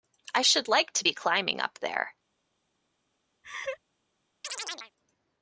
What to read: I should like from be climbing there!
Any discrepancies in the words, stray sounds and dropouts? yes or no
yes